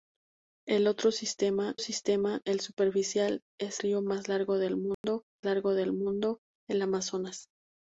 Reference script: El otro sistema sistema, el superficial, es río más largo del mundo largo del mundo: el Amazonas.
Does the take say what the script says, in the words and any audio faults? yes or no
no